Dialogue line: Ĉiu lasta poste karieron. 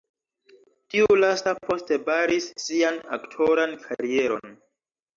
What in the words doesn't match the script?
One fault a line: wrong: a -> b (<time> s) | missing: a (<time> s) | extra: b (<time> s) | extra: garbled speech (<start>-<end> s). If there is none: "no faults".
wrong: Ĉiu -> Tiu (0.9 s)
extra: baris sian aktoran (2.1 s)